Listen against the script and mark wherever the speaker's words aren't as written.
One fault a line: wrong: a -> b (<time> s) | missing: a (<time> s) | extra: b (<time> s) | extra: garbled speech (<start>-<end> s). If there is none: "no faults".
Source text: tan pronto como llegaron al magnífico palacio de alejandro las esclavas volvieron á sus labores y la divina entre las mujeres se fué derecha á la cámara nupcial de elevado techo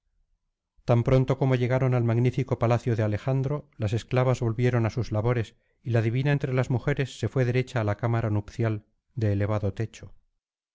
no faults